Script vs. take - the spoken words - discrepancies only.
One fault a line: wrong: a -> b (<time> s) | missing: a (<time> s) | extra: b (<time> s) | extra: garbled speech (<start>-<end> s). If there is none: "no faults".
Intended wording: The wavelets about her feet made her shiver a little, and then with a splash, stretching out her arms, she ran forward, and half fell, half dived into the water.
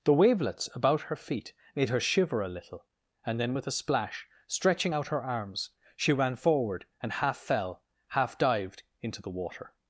no faults